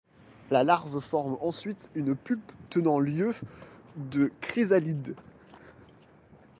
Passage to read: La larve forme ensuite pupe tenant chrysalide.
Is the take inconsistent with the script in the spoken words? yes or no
yes